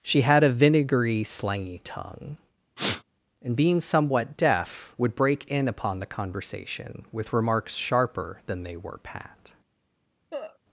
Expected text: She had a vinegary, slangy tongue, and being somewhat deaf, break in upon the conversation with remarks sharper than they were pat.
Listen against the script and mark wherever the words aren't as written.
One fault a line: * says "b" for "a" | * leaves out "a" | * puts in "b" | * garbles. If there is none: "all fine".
* puts in "would"